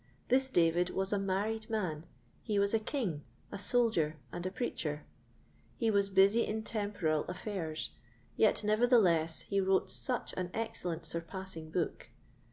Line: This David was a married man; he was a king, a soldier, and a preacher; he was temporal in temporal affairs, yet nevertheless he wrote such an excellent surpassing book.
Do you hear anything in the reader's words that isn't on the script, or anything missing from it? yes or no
yes